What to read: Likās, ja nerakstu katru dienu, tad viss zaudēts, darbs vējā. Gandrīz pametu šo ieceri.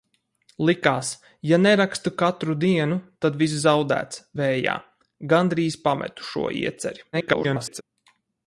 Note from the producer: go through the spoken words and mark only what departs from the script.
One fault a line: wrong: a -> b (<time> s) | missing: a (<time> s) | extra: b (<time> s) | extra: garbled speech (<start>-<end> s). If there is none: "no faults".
missing: darbs (4.2 s)
extra: garbled speech (7.1-7.8 s)